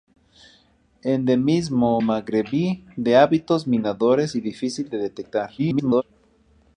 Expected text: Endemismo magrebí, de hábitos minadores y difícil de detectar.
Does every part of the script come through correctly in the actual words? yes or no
no